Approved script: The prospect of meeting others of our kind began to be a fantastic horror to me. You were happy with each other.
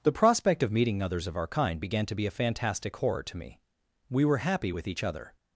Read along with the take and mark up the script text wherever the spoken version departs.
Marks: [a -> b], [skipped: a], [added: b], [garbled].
The prospect of meeting others of our kind began to be a fantastic horror to me. [You -> We] were happy with each other.